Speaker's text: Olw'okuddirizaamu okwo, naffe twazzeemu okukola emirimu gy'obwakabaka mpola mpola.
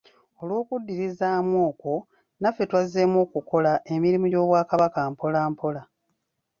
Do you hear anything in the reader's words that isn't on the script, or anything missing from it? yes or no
no